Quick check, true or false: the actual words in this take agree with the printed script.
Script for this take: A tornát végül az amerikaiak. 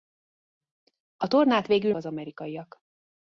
true